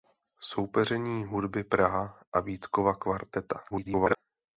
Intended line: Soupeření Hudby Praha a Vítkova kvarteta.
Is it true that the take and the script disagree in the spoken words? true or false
true